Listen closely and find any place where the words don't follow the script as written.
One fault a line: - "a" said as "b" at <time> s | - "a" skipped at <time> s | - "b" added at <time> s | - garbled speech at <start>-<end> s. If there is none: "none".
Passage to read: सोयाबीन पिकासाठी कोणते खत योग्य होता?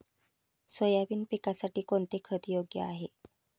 - "होता" said as "आहे" at 2.8 s